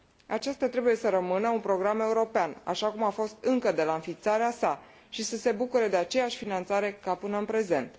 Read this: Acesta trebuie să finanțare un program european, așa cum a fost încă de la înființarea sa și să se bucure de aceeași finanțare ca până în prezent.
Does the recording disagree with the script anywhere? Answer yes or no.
yes